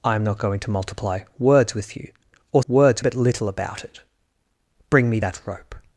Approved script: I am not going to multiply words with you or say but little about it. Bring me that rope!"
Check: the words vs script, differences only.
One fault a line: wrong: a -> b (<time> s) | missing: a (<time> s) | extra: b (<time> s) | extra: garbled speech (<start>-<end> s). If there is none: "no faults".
wrong: say -> words (2.7 s)